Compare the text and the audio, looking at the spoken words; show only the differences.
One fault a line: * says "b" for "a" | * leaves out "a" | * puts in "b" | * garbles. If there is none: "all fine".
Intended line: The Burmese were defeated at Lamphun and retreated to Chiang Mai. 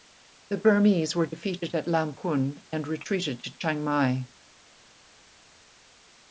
all fine